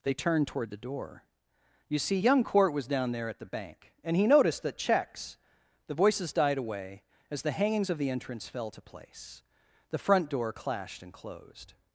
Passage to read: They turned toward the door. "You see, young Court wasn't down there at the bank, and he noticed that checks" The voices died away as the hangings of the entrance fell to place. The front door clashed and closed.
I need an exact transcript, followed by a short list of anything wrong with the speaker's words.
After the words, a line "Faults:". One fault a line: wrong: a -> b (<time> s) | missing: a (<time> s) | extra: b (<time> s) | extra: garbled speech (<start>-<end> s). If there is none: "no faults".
They turned toward the door. "You see, young Court was down there at the bank, and he noticed that checks" The voices died away as the hangings of the entrance fell to place. The front door clashed and closed.
Faults:
wrong: wasn't -> was (2.7 s)